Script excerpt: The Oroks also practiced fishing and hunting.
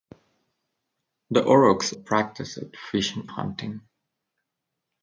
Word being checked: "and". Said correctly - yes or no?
no